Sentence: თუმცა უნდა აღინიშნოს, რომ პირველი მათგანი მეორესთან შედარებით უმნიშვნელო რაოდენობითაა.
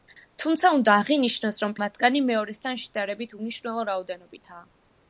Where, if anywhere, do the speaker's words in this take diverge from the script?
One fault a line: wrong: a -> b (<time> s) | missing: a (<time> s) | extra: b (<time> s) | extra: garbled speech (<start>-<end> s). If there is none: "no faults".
missing: პირველი (1.8 s)